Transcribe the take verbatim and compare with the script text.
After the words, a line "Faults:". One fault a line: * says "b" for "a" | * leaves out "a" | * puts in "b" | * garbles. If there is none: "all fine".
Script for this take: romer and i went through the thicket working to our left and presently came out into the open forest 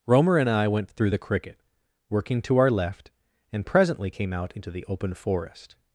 romer and i went through the cricket working to our left and presently came out into the open forest
Faults:
* says "cricket" for "thicket"